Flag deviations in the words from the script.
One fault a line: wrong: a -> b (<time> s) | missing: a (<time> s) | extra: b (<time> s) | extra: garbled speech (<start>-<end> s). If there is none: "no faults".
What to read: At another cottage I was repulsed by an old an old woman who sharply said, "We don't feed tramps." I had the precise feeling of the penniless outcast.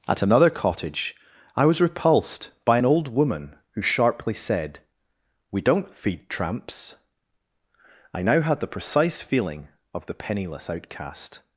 missing: an old (3.1 s)
extra: now (8.2 s)